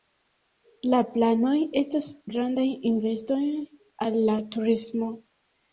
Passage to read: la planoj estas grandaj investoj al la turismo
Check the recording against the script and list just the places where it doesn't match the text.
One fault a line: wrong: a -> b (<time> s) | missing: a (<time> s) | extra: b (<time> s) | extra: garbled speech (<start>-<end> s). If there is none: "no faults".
no faults